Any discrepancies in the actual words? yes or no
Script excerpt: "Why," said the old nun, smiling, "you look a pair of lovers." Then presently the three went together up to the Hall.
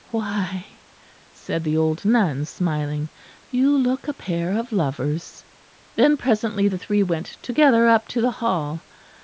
no